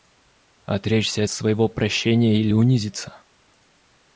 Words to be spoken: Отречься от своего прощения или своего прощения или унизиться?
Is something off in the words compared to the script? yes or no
yes